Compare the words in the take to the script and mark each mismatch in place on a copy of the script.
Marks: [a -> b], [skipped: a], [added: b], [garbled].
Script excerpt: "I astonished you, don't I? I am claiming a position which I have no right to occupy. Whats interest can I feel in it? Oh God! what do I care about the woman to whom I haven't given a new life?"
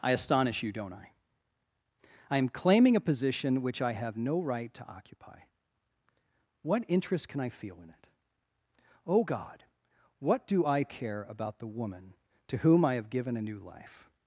"I [astonished -> astonish] you, don't I? I am claiming a position which I have no right to occupy. [Whats -> What] interest can I feel in it? Oh God! what do I care about the woman to whom I [haven't -> have] given a new life?"